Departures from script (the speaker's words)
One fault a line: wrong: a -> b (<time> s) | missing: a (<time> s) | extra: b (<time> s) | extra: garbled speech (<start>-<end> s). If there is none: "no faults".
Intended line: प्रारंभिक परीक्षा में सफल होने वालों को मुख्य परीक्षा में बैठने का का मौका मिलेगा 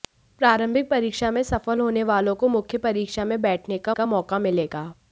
no faults